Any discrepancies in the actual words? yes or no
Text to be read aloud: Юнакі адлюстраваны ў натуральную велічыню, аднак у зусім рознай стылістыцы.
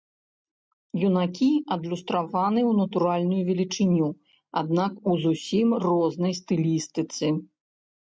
no